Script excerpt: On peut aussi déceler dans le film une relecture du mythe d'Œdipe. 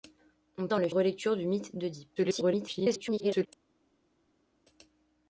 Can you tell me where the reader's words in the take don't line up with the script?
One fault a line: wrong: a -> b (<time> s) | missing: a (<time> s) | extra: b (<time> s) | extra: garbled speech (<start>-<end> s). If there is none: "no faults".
missing: peut aussi déceler (0.7 s)
missing: film une (0.9 s)
extra: garbled speech (2.2-3.5 s)